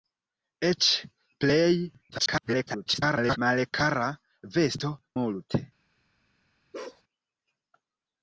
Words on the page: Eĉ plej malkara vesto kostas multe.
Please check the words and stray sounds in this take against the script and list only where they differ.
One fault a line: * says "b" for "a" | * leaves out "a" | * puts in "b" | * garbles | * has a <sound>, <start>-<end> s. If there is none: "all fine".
* garbles
* leaves out "kostas"
* has a bark, 6.7-7.0 s